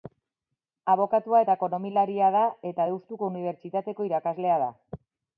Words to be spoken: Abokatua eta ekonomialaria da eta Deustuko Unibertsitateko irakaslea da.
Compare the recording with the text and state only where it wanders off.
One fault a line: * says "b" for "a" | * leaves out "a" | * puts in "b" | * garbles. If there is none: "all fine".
all fine